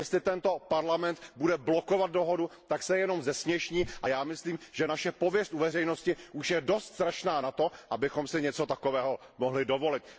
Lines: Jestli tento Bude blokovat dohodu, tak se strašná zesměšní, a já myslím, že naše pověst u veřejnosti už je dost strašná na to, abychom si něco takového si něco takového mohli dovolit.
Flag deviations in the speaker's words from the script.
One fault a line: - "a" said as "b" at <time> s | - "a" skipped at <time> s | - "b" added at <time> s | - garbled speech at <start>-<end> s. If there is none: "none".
- "Parlament" added at 0.6 s
- "strašná" said as "jenom" at 3.0 s
- "si něco takového" skipped at 9.2 s